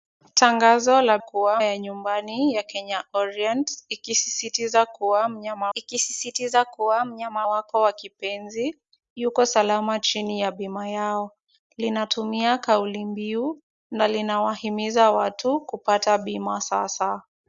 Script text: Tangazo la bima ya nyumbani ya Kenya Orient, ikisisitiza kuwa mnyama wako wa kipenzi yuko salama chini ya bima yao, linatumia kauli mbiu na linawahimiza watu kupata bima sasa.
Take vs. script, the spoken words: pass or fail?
fail